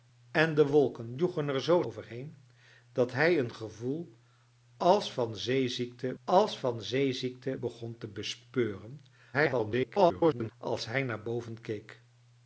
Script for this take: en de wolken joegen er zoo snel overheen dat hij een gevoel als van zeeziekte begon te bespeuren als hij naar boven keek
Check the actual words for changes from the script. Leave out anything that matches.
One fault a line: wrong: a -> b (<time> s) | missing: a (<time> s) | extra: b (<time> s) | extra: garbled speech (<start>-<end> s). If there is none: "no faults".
missing: snel (1.8 s)
extra: als van zeeziekte (6.2 s)
extra: garbled speech (9.3-10.5 s)